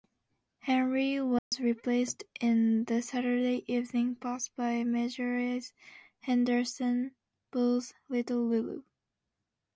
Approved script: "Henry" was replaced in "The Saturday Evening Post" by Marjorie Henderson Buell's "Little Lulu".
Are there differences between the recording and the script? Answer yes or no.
no